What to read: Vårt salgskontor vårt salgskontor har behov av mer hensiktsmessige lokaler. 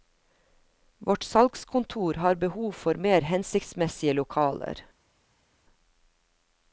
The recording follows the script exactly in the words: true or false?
false